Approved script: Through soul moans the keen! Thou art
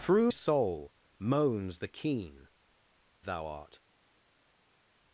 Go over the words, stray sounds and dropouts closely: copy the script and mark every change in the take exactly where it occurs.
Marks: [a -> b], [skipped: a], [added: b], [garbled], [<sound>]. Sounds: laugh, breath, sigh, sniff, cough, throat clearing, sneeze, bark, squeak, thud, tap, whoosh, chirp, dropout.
Through soul moans the keen! Thou art